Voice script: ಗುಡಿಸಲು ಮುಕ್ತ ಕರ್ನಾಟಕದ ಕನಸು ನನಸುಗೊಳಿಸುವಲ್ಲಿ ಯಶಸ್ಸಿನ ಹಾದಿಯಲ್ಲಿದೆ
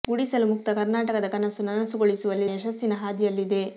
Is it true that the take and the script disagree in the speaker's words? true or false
false